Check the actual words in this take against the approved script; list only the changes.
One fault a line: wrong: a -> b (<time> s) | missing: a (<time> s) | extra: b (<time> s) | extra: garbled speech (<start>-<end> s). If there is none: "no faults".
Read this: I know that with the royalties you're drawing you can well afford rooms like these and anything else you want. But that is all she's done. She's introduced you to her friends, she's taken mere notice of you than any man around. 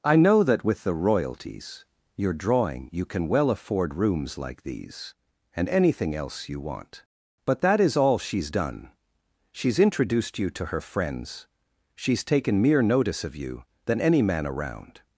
no faults